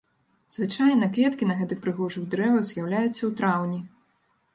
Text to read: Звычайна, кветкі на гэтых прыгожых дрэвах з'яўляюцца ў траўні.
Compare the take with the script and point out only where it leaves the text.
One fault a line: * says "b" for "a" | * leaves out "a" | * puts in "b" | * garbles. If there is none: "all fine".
all fine